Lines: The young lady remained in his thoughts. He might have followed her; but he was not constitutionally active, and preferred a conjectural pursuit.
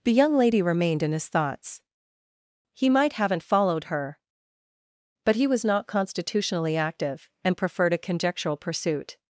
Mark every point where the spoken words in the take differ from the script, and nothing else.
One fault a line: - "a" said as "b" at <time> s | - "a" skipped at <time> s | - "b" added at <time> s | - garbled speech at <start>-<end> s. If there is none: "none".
- "have" said as "haven't" at 3.1 s